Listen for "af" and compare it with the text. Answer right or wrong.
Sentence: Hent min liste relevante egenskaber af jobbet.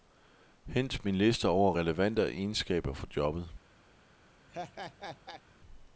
wrong